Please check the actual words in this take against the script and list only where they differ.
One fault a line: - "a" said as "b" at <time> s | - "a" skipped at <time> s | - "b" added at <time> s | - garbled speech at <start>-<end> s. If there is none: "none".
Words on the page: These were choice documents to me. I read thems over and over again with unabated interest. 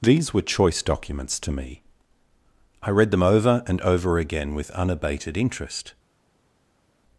- "thems" said as "them" at 3.1 s